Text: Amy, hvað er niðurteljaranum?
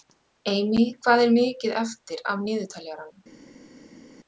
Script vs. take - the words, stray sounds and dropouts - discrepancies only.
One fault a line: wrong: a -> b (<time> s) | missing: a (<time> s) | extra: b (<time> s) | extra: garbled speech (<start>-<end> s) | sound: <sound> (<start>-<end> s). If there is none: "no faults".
extra: mikið eftir af (1.4 s)